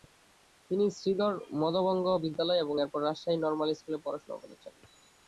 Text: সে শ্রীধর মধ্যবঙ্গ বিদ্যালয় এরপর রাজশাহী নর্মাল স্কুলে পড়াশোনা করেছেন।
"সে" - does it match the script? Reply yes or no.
no